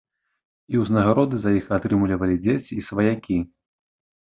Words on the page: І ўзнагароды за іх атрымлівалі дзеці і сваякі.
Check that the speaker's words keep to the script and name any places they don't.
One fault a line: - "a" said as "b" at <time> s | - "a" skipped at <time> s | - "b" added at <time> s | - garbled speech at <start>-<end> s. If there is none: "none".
none